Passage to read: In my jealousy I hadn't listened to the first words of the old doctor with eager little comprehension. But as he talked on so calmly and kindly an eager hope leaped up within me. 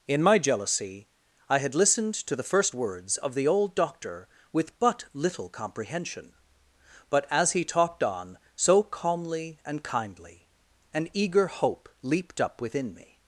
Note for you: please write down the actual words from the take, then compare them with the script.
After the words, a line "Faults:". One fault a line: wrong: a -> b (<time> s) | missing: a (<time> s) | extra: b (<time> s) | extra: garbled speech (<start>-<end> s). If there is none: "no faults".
In my jealousy I had listened to the first words of the old doctor with but little comprehension. But as he talked on so calmly and kindly an eager hope leaped up within me.
Faults:
wrong: hadn't -> had (1.6 s)
wrong: eager -> but (4.8 s)